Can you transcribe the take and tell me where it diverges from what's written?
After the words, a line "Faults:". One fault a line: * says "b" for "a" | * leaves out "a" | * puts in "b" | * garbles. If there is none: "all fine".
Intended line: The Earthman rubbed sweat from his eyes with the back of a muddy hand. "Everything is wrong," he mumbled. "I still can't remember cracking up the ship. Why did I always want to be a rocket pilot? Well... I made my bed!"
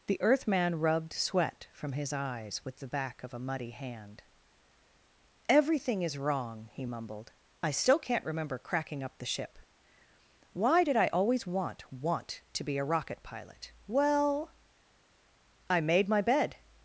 The Earthman rubbed sweat from his eyes with the back of a muddy hand. "Everything is wrong," he mumbled. "I still can't remember cracking up the ship. Why did I always want want to be a rocket pilot? Well... I made my bed!"
Faults:
* puts in "want"